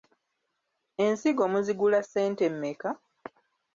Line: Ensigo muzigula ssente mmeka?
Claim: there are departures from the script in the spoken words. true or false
false